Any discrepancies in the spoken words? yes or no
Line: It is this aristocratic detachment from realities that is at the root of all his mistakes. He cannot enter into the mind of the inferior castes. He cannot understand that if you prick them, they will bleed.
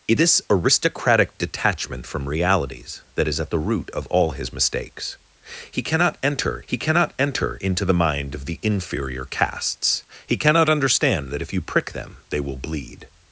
yes